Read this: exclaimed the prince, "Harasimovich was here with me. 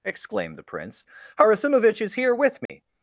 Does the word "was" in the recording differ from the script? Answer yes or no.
yes